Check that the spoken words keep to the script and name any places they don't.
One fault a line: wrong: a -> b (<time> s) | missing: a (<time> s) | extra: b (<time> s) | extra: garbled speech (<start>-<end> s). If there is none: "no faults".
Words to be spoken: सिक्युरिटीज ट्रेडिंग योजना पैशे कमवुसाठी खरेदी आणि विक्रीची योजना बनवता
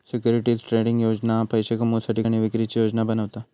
missing: खरेदी (2.2 s)